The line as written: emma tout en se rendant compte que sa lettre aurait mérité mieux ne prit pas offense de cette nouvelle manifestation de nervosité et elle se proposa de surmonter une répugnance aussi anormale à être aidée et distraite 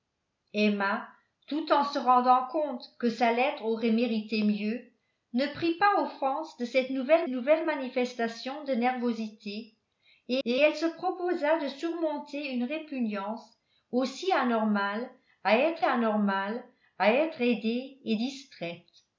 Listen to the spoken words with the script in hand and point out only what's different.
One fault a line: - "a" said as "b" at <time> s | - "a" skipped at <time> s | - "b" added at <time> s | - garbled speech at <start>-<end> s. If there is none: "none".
- "nouvelle" added at 7.3 s
- "et" added at 10.5 s
- "anormale à être" added at 15.8 s